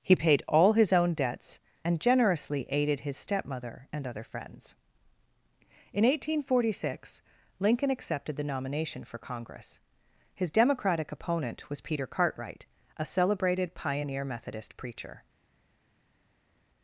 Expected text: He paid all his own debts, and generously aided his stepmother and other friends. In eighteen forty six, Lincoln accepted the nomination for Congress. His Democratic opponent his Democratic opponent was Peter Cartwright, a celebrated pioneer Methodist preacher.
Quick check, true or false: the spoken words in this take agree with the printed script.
false